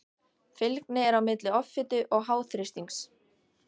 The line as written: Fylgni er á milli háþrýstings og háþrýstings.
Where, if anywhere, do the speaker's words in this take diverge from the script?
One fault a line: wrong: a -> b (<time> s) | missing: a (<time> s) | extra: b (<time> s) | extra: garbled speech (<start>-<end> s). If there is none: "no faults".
wrong: háþrýstings -> offitu (1.6 s)